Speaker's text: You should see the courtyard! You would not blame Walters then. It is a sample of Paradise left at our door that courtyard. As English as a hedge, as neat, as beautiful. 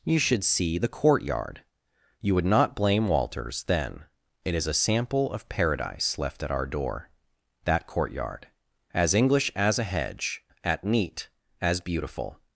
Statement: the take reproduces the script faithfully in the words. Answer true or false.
false